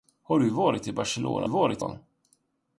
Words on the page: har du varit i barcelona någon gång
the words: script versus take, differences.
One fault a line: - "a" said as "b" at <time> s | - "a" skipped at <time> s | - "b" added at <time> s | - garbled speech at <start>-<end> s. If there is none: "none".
- "någon" said as "varit" at 1.5 s